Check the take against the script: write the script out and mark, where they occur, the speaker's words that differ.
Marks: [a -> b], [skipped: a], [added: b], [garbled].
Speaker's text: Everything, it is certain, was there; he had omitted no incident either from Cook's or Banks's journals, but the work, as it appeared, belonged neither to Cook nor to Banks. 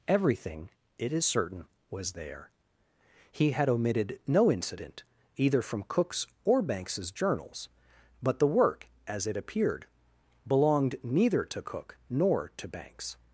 Everything, it is certain, was there; he had omitted no incident either from Cook's or Banks's journals, but the work, as it appeared, belonged neither to Cook nor to Banks.